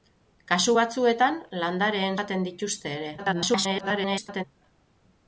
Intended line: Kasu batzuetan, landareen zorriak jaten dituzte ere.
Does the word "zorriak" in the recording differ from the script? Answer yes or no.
yes